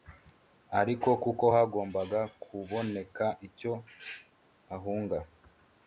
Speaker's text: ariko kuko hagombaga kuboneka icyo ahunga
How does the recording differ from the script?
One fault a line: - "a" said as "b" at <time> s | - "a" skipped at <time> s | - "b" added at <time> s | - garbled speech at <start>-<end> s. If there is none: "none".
none